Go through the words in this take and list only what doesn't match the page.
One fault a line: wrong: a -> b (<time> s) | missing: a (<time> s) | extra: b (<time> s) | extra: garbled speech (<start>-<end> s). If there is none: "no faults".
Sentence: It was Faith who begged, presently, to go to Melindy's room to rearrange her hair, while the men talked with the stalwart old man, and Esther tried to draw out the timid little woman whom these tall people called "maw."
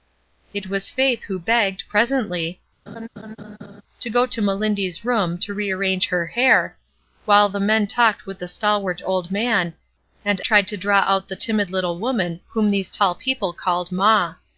missing: Esther (10.4 s)